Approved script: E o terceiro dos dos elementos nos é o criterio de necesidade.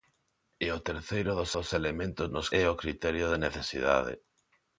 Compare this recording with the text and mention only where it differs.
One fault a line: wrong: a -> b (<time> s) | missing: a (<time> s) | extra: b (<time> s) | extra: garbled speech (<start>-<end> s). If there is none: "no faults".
no faults